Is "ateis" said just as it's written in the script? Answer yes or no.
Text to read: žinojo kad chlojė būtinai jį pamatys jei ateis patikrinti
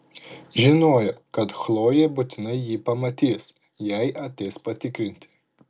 yes